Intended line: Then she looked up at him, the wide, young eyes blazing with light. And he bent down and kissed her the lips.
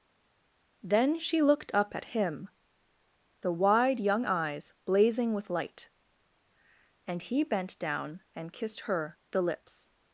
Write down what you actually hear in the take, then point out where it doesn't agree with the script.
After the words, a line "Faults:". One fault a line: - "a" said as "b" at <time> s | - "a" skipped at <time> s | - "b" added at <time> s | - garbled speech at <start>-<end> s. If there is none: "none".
Then she looked up at him, the wide, young eyes blazing with light. And he bent down and kissed her the lips.
Faults:
none